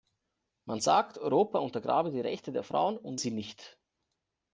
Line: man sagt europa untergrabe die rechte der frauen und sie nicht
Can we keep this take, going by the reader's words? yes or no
yes